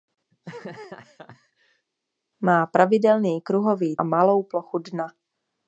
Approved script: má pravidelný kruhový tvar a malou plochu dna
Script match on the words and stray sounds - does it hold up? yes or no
no